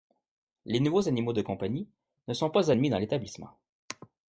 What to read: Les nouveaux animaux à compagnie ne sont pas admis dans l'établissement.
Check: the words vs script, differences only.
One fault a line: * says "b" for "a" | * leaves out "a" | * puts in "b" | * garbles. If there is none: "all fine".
* says "de" for "à"